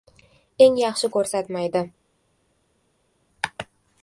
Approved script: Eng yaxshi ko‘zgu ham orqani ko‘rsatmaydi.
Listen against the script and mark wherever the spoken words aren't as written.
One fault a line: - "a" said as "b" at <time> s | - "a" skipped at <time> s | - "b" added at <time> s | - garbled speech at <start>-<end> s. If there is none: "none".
- "ko‘zgu ham orqani" skipped at 1.1 s